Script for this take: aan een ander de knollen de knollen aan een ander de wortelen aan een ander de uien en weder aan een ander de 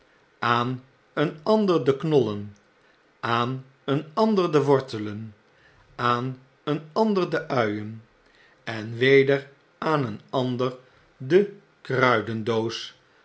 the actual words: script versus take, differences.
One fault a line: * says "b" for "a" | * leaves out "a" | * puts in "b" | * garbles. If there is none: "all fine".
* leaves out "de knollen"